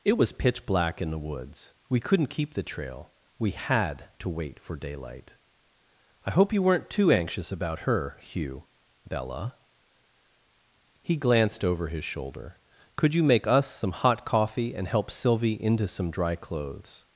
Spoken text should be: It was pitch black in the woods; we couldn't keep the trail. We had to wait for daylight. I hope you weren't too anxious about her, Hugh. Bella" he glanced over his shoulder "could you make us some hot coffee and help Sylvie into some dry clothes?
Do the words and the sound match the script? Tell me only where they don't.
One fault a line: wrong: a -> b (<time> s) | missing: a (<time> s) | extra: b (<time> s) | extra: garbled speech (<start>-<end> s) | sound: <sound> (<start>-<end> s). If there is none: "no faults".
no faults